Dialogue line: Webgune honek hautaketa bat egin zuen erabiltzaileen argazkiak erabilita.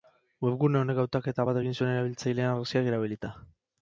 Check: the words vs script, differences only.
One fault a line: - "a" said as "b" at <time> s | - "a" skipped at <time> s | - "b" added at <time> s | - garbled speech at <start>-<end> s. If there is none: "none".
none